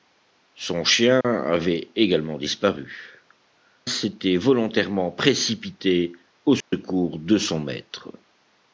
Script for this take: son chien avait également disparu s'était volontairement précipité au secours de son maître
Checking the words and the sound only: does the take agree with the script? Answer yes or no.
no